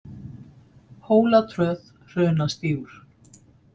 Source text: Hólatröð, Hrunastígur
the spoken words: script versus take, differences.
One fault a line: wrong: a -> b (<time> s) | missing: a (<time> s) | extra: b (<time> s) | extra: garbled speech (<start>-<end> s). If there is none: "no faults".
no faults